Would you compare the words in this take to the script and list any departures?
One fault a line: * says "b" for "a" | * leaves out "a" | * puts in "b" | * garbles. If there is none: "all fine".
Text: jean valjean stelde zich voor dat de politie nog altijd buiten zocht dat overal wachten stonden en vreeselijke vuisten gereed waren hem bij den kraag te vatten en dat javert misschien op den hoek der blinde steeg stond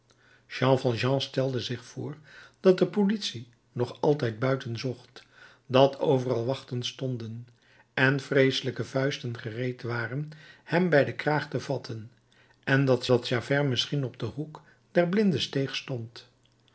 * puts in "dat"